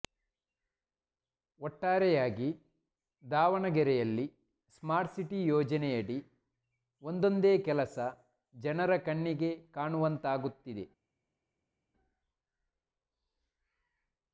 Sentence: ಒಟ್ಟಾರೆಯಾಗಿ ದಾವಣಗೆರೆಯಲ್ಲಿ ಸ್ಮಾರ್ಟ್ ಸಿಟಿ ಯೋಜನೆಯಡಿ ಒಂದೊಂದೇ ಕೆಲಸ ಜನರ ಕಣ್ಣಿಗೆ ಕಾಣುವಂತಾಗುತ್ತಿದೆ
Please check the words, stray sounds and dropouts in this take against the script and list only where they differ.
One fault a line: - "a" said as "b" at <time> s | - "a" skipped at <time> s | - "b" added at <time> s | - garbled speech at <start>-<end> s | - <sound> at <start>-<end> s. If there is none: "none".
none